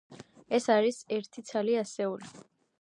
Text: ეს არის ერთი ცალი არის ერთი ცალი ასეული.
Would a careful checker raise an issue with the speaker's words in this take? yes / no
yes